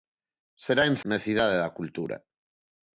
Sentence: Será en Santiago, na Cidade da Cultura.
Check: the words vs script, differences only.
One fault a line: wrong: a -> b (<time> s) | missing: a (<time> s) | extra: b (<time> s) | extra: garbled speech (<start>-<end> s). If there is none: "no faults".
missing: Santiago (0.9 s)